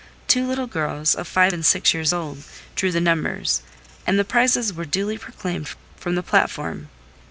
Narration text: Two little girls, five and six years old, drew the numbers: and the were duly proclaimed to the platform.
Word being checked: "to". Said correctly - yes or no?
no